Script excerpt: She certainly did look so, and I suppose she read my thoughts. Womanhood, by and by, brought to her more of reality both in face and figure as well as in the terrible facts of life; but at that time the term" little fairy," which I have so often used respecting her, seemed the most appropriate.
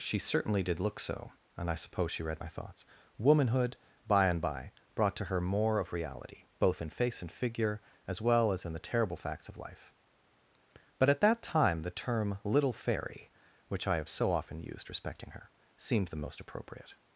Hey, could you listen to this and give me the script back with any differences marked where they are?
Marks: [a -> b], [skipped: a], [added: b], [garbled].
She certainly did look so, and I suppose she read my thoughts. Womanhood, by and by, brought to her more of reality both in face and figure as well as in the terrible facts of life; but at that time the term" little fairy," which I have so often used respecting her, seemed the most appropriate.